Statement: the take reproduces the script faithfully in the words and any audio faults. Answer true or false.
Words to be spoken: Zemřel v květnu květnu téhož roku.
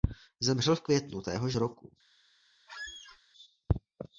false